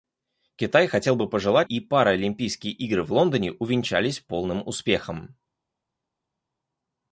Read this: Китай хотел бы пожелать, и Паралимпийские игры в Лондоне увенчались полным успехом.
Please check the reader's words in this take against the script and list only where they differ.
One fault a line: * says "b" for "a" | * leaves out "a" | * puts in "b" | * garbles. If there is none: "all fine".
all fine